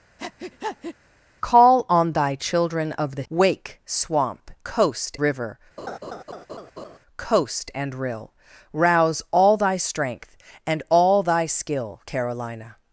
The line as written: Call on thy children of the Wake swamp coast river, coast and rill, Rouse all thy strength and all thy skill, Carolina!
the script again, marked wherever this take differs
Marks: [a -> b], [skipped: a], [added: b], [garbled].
Call on thy children of the Wake swamp coast river, coast and rill, Rouse all thy strength and all thy skill, Carolina!